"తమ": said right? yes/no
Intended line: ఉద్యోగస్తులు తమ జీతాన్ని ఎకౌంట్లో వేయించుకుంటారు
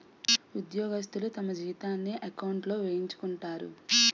yes